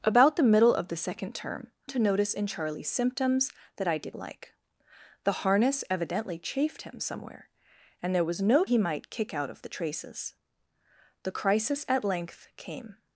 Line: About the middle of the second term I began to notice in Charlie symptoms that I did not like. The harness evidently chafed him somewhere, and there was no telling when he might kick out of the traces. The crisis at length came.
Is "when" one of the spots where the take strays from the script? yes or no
yes